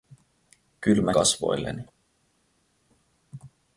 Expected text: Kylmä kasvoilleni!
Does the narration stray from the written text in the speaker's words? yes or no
no